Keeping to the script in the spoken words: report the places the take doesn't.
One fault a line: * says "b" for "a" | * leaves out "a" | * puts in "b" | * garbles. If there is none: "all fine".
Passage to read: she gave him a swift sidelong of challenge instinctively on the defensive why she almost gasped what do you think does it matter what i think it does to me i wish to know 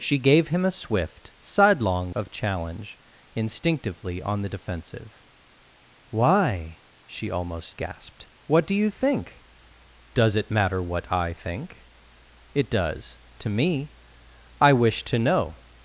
all fine